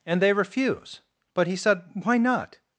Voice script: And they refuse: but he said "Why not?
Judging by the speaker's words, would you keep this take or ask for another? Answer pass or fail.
pass